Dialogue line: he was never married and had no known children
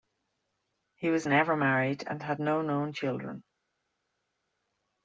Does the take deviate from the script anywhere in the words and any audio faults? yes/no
no